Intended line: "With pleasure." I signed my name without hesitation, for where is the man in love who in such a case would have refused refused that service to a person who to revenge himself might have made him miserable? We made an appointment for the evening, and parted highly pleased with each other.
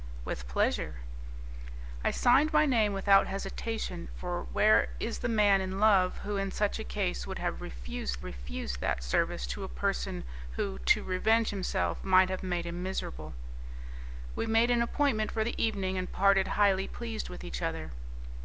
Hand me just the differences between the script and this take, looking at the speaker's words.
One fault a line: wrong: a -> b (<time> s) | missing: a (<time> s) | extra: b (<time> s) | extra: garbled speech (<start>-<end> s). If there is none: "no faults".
no faults